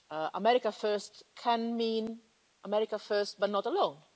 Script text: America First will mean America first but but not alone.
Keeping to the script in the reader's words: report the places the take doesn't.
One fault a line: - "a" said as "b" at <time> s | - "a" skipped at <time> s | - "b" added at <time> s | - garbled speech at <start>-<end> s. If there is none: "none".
- "will" said as "can" at 1.4 s
- "but" skipped at 3.5 s